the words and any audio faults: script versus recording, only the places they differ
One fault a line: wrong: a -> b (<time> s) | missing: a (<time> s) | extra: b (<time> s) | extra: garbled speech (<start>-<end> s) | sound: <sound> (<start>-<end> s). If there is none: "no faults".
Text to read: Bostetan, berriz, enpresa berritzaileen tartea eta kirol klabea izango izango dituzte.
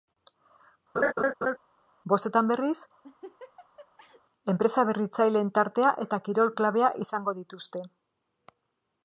sound: laugh (0.9-1.6 s)
sound: laugh (3.0-4.2 s)
missing: izango (7.4 s)